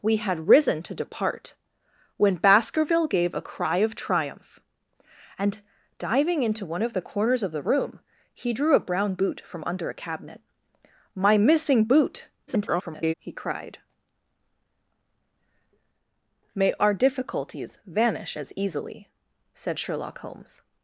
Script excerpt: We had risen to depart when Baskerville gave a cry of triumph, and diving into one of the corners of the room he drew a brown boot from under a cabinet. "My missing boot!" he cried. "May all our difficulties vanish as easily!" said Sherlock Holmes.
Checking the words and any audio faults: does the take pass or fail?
fail